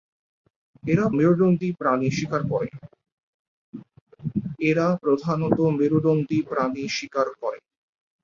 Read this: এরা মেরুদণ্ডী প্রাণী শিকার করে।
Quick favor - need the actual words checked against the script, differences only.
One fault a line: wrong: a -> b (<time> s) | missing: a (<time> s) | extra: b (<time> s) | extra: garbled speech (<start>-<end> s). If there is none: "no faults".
no faults